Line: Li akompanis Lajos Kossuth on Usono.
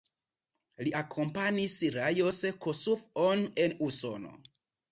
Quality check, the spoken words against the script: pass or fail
fail